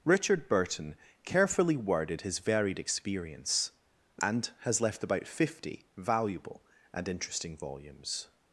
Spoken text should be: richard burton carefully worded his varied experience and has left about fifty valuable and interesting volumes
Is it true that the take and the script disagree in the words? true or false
false